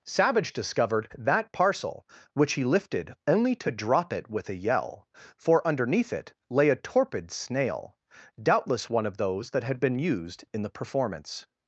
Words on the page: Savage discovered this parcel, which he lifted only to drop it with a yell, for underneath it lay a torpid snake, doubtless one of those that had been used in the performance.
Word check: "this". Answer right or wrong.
wrong